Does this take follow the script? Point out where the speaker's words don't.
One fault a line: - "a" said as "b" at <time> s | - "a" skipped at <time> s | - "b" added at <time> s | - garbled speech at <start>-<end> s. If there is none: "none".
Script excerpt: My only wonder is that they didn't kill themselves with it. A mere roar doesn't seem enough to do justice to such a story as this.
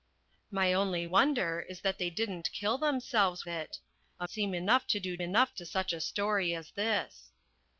- "with" skipped at 3.5 s
- "mere roar doesn't" skipped at 4.3 s
- "justice" said as "enough" at 5.2 s